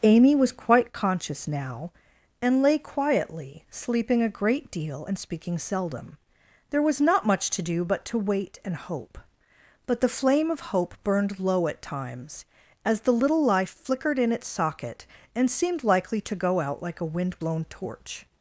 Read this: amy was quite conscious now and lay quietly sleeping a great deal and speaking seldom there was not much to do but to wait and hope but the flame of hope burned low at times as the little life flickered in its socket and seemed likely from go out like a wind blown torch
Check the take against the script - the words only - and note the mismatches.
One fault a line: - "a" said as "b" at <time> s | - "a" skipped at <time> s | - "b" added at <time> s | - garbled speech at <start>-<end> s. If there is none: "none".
- "from" said as "to" at 16.2 s